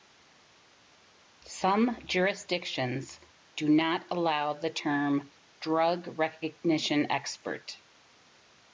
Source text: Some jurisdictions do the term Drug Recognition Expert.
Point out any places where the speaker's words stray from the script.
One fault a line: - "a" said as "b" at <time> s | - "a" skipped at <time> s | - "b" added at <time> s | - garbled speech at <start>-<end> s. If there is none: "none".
- "not allow" added at 3.7 s